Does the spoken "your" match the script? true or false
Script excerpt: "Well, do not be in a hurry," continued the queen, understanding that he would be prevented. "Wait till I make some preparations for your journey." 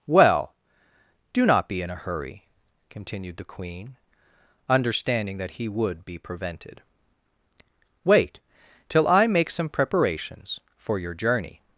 true